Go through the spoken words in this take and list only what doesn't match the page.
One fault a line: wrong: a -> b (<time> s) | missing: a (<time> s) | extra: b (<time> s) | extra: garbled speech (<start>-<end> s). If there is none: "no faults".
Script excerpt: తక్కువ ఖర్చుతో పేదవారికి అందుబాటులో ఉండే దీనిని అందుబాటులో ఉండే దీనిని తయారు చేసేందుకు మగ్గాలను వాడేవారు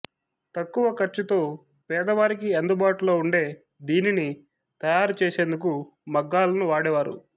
missing: అందుబాటులో ఉండే దీనిని (4.3 s)